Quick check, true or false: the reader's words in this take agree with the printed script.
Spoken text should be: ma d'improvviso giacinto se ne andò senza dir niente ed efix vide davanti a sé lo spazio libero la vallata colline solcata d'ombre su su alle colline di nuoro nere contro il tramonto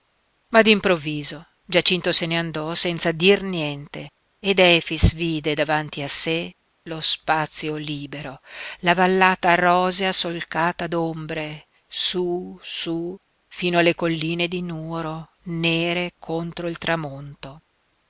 false